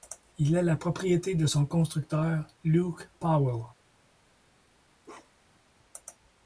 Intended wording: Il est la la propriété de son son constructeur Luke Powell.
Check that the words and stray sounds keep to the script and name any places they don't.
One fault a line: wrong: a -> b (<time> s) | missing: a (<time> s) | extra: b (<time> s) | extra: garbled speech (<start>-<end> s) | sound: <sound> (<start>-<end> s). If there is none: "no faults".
missing: la (0.8 s)
missing: son (1.7 s)
sound: bark (5.0-5.6 s)